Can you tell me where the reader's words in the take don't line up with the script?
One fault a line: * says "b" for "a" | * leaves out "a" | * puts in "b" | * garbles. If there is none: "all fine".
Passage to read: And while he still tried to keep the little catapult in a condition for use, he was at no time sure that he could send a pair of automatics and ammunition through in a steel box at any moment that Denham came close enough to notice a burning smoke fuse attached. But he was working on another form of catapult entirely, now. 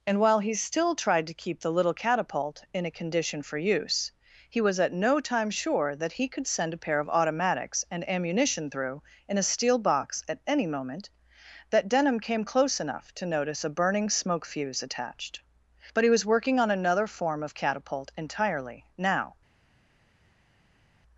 all fine